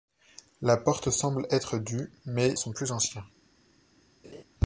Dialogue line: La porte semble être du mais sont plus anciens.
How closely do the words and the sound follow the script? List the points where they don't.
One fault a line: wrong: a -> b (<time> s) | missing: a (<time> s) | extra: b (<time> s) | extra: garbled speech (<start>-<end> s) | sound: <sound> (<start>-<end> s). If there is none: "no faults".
sound: laugh (4.2-4.4 s)